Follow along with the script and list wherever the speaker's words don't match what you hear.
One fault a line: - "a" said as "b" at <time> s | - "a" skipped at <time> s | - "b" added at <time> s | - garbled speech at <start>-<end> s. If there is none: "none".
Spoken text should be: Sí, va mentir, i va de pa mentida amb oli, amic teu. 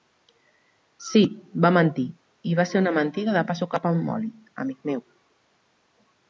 - "ser una mentida" added at 2.7 s
- "mentida" said as "sucat" at 3.6 s
- "teu" said as "meu" at 4.9 s